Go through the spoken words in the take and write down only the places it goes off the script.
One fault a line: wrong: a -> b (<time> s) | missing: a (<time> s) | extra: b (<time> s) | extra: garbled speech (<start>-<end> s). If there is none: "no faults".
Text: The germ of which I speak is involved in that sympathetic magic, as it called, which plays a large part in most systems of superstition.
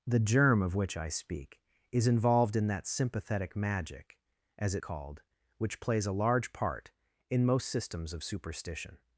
no faults